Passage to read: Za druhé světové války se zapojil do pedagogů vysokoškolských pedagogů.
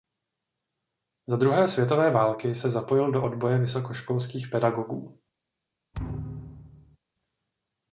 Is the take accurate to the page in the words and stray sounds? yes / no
no